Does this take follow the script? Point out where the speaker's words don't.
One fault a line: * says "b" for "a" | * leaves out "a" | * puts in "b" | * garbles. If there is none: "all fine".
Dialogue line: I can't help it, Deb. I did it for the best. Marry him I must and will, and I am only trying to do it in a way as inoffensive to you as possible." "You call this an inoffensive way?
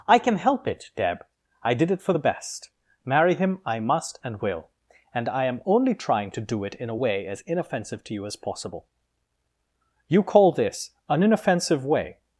* says "can" for "can't"